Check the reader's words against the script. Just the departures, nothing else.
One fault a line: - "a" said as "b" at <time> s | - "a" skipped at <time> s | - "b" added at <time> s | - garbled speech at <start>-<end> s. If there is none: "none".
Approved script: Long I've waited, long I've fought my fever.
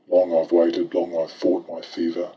none